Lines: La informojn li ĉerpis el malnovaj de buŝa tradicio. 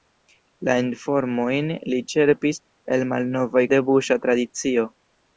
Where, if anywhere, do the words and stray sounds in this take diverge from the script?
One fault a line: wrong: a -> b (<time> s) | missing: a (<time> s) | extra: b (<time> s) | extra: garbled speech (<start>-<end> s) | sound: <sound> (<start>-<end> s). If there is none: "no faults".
no faults